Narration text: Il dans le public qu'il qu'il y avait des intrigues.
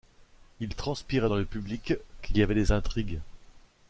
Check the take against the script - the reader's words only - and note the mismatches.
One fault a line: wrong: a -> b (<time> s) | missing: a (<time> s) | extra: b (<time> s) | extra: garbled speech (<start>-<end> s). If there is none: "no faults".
extra: transpirait (0.7 s)
missing: qu'il (2.4 s)